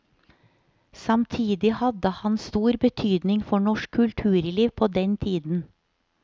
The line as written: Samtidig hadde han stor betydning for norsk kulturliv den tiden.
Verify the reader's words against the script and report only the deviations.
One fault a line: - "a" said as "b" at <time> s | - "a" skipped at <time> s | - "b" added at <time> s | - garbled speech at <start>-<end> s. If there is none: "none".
- "på" added at 4.7 s